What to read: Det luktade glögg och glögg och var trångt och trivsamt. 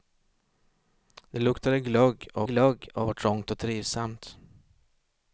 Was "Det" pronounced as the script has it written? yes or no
yes